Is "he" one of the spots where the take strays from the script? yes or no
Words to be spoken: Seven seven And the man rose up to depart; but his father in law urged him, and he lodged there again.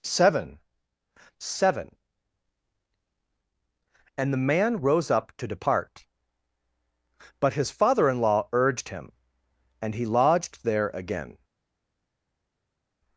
no